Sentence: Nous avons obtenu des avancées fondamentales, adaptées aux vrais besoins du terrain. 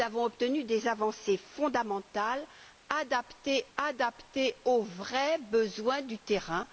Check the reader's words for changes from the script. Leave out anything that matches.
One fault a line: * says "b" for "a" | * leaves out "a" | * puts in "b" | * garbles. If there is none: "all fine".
* puts in "adaptées"